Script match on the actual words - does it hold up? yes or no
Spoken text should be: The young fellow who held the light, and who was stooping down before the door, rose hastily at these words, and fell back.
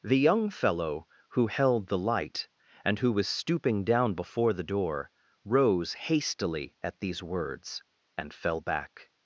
yes